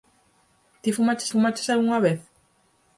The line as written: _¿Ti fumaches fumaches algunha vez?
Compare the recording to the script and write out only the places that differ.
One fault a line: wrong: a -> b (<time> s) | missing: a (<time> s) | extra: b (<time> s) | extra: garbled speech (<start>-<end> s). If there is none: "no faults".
no faults